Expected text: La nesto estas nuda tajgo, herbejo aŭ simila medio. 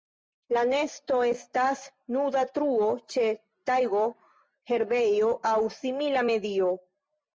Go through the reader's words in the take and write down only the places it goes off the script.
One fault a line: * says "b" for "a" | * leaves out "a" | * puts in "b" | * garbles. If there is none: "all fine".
* puts in "truo ĉe"